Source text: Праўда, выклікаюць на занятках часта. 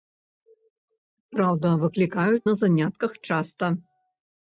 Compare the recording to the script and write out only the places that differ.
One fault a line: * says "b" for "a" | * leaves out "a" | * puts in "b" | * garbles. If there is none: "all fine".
all fine